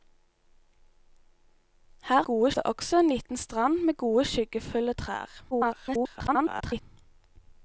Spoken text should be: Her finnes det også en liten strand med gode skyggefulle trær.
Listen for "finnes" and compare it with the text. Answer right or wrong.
wrong